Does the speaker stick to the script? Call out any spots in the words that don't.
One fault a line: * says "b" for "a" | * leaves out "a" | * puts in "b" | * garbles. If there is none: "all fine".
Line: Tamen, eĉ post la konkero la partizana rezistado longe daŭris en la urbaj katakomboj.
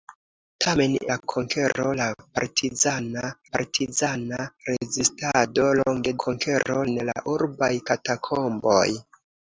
* leaves out "eĉ post"
* puts in "partizana"
* says "konkero" for "daŭris"